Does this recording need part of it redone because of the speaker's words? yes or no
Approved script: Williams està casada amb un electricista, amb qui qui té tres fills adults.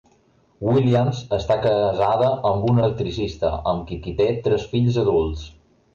no